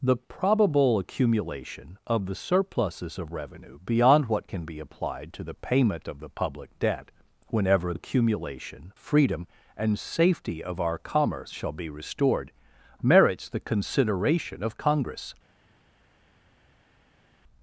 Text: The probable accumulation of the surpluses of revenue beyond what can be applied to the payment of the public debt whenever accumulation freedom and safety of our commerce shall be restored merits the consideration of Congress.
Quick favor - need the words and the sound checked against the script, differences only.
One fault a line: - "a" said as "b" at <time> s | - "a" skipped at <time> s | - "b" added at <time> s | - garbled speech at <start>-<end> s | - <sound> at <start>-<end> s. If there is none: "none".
none